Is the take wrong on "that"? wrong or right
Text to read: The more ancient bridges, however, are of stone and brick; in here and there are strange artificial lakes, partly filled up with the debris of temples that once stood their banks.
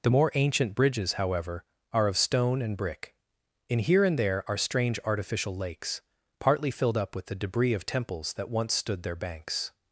right